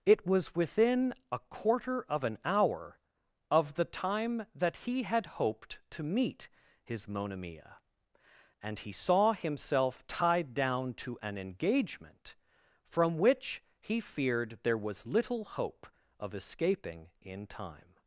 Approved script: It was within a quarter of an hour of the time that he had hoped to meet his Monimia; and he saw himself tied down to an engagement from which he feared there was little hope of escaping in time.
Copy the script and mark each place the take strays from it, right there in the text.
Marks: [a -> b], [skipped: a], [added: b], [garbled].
It was within a quarter of an hour of the time that he had hoped to meet his Monimia; and he saw himself tied down to an engagement from which he feared there was little hope of escaping in time.